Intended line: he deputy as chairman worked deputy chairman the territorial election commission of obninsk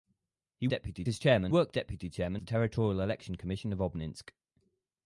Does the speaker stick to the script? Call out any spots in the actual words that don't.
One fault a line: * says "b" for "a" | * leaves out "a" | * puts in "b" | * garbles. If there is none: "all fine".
all fine